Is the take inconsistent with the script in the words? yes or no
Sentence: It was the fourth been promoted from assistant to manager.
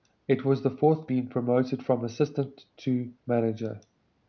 no